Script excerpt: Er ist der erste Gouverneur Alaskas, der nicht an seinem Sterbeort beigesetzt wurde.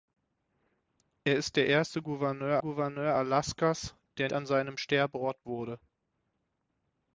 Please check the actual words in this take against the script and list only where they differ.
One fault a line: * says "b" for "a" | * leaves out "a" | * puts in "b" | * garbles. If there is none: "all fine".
* puts in "Gouverneur"
* leaves out "nicht"
* leaves out "beigesetzt"